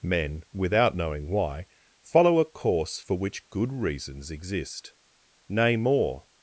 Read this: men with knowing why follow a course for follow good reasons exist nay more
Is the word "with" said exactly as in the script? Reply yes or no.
no